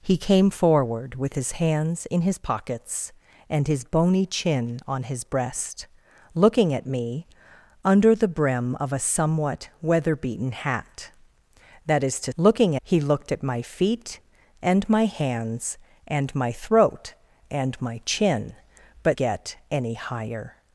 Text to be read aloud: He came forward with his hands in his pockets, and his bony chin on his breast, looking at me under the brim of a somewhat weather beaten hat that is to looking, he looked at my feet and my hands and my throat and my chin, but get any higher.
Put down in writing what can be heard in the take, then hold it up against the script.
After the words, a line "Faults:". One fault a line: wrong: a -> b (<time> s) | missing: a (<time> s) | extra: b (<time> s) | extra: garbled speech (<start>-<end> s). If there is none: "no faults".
He came forward with his hands in his pockets, and his bony chin on his breast, looking at me under the brim of a somewhat weather beaten hat that is to looking, he looked at my feet and my hands and my throat and my chin, but get any higher.
Faults:
no faults